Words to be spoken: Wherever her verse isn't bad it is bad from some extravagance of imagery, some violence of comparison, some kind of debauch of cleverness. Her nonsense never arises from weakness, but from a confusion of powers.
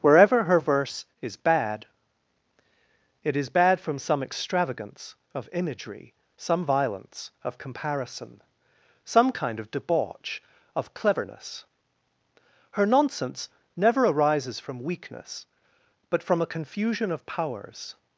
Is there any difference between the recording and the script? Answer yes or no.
yes